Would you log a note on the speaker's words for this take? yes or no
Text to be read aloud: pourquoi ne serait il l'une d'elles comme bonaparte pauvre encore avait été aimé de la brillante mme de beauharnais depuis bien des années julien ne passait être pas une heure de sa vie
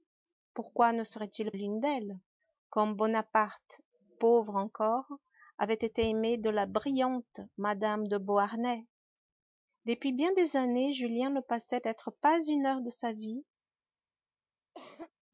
no